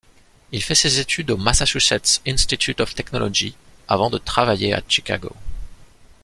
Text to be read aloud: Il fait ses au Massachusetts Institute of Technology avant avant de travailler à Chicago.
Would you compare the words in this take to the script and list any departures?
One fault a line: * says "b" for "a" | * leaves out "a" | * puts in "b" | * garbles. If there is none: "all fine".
* puts in "études"
* leaves out "avant"